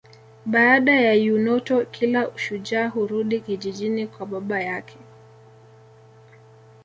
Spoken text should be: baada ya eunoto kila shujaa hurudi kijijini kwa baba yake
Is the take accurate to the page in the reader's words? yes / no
yes